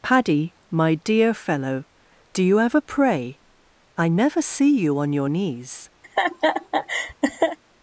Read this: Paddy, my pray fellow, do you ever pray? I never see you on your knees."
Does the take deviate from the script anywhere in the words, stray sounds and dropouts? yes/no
yes